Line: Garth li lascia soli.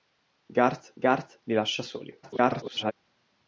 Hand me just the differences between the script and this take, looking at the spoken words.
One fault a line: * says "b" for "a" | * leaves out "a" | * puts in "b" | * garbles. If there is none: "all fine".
* puts in "garth"
* garbles